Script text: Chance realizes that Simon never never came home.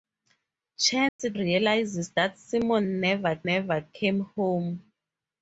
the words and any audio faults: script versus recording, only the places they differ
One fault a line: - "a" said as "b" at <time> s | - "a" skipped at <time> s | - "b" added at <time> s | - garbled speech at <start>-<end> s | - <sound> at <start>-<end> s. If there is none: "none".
- dropout at 1.1-1.2 s